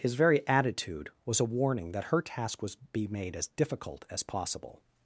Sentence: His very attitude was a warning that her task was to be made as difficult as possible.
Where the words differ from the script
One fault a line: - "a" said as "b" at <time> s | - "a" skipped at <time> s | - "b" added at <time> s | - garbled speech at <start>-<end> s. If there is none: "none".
- "to" skipped at 2.8 s